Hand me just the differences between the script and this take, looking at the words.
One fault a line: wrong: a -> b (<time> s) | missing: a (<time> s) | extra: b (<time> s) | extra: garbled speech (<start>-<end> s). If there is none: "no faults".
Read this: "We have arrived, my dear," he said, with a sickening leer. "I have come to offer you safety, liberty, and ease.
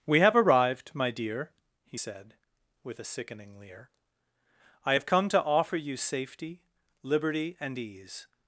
no faults